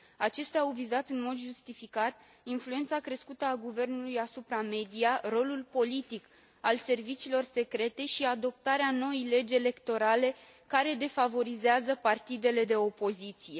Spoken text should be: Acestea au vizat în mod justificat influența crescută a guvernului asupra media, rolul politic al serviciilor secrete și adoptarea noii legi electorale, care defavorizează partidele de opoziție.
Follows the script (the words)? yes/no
yes